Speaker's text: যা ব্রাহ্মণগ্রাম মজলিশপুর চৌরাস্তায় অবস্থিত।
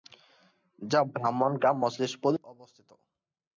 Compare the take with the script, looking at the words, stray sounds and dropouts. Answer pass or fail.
fail